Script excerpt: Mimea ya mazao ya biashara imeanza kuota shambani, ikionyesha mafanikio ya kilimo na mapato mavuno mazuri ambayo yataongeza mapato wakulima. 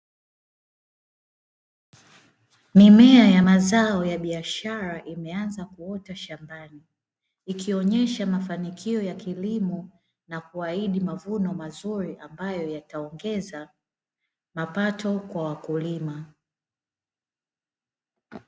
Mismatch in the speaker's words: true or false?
true